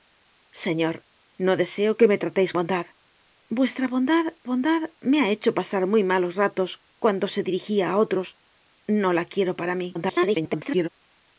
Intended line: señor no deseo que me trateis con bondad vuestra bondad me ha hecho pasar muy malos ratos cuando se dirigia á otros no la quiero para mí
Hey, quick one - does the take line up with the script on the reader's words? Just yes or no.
no